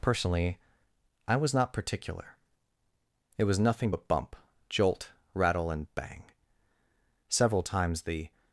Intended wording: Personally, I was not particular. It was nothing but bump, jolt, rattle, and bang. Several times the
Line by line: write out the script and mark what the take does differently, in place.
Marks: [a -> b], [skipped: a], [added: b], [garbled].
Personally, I was not particular. It was nothing but bump, jolt, rattle, and bang. Several times the